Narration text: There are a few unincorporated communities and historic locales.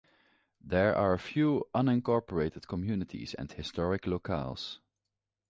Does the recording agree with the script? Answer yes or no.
yes